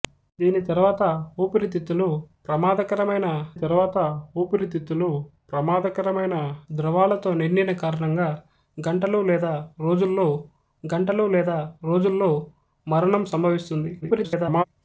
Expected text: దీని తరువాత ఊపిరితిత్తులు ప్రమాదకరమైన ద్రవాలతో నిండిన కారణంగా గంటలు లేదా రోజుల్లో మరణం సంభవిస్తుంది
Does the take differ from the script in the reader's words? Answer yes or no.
yes